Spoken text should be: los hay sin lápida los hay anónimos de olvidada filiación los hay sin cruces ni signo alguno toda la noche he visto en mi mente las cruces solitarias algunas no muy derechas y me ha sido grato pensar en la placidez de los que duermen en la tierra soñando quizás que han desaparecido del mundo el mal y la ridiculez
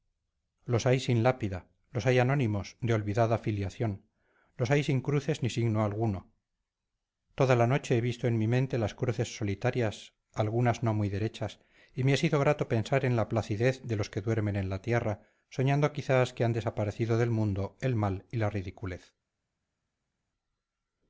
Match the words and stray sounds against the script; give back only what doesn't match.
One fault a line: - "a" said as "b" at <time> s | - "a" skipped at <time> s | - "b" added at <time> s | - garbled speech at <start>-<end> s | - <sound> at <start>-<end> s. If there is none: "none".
none